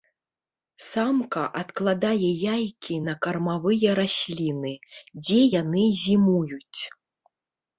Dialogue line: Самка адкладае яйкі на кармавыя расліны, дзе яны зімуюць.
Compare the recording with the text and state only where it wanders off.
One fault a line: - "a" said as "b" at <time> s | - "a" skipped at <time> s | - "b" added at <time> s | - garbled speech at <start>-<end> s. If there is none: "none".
none